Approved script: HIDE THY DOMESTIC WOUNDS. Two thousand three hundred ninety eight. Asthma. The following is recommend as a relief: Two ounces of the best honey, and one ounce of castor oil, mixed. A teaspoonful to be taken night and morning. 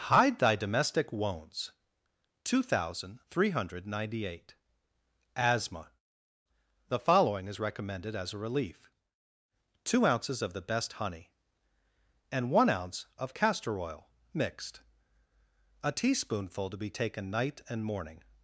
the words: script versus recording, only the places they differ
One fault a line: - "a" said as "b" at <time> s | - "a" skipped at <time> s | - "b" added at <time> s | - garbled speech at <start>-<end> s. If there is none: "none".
- "recommend" said as "recommended" at 7.6 s